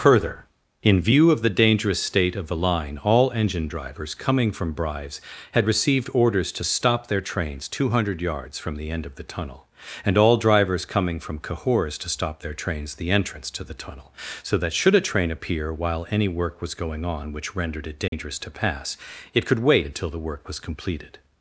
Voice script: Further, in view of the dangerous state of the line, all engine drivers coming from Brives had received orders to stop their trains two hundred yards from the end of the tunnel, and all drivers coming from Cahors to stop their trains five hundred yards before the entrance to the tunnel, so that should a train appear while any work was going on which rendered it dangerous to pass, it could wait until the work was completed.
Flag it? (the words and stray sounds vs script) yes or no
yes